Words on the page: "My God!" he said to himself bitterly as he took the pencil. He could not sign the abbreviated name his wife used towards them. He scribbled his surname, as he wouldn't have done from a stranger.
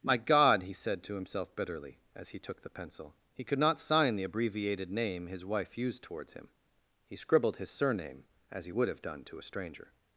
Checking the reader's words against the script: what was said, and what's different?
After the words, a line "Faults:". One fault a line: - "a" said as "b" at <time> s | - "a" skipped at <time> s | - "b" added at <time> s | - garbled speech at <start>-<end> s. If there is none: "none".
"My God!" he said to himself bitterly as he took the pencil. He could not sign the abbreviated name his wife used towards him. He scribbled his surname, as he would have done to a stranger.
Faults:
- "them" said as "him" at 6.3 s
- "wouldn't" said as "would" at 8.7 s
- "from" said as "to" at 9.2 s